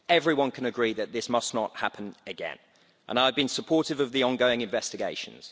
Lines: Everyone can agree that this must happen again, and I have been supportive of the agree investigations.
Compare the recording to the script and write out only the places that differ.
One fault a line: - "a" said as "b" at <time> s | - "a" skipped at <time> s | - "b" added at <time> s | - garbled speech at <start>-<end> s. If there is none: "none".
- "not" added at 1.5 s
- "agree" said as "ongoing" at 4.2 s